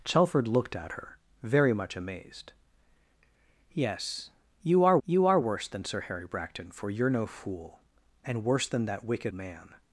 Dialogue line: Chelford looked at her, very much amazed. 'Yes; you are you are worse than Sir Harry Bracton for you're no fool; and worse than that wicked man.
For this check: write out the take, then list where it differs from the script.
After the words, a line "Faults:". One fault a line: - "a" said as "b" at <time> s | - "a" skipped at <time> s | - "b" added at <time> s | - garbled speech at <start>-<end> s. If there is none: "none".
Chelford looked at her, very much amazed. 'Yes; you are you are worse than Sir Harry Bracton for you're no fool; and worse than that wicked man.
Faults:
none